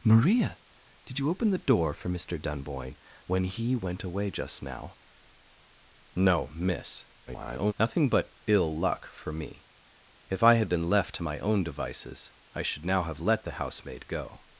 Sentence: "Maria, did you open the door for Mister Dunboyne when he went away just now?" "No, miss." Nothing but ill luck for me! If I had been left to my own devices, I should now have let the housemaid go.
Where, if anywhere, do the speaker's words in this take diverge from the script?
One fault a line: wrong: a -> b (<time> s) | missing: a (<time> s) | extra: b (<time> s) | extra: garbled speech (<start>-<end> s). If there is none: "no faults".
extra: garbled speech (7.3-7.7 s)